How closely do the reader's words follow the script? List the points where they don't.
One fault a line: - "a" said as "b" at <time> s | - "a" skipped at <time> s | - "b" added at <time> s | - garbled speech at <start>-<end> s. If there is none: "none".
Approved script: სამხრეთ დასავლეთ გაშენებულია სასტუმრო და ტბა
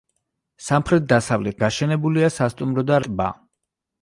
none